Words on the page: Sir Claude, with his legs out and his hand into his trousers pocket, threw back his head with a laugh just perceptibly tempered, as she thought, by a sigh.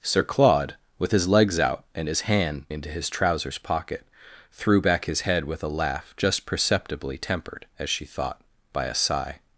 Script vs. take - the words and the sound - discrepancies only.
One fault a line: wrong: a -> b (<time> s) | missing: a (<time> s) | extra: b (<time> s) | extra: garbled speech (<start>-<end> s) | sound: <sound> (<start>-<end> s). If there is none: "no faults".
no faults